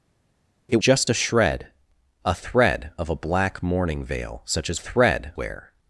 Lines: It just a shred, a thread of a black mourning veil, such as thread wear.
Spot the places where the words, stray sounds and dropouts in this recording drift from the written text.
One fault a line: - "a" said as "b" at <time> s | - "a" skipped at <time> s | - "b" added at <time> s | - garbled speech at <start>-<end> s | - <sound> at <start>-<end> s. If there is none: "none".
none